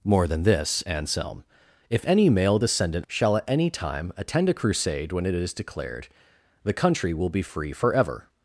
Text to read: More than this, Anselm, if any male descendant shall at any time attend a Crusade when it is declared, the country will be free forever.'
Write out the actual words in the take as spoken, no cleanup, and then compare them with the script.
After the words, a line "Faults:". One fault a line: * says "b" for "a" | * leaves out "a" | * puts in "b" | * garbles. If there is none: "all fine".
More than this, Anselm, if any male descendant shall at any time attend a Crusade when it is declared, the country will be free forever.'
Faults:
all fine